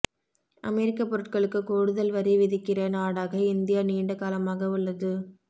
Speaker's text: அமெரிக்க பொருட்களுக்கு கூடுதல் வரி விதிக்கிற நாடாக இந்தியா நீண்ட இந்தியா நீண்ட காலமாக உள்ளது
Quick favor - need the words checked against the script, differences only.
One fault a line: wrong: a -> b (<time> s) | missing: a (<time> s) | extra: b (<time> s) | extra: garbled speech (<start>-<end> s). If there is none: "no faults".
missing: இந்தியா நீண்ட (4.2 s)